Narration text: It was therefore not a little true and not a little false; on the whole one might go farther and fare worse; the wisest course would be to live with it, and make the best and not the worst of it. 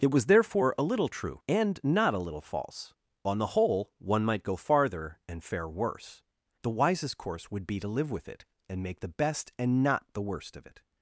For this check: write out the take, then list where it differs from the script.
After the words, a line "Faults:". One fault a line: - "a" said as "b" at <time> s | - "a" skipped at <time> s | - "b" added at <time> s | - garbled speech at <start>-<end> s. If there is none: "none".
It was therefore a little true and not a little false; on the whole one might go farther and fare worse; the wisest course would be to live with it, and make the best and not the worst of it.
Faults:
- "not" skipped at 0.7 s